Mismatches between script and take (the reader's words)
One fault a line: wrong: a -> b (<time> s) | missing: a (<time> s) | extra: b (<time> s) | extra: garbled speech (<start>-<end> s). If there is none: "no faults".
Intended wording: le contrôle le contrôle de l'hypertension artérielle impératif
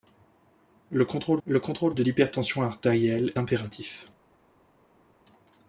no faults